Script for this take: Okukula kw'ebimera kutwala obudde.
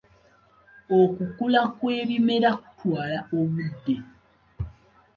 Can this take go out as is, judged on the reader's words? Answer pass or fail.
pass